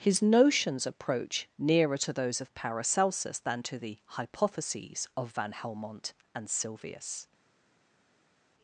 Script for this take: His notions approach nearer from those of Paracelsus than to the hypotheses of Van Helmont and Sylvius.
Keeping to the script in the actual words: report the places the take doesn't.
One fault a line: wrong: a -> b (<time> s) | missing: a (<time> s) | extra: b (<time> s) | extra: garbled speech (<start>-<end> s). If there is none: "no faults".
wrong: from -> to (1.9 s)